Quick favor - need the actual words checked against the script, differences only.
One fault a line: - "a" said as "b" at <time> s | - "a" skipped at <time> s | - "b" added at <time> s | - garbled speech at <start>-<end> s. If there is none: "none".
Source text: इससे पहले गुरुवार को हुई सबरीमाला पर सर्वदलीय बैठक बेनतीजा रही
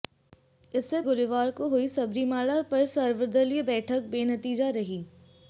- "पहले" skipped at 1.0 s